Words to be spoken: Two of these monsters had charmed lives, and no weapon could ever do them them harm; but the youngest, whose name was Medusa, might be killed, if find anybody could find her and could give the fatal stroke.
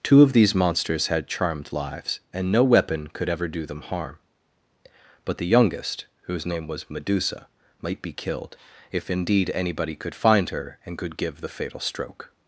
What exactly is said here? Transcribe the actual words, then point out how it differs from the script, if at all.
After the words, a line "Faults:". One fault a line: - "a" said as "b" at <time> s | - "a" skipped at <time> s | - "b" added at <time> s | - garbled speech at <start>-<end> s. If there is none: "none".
Two of these monsters had charmed lives, and no weapon could ever do them harm; but the youngest, whose name was Medusa, might be killed, if indeed anybody could find her and could give the fatal stroke.
Faults:
- "them" skipped at 3.8 s
- "find" said as "indeed" at 9.1 s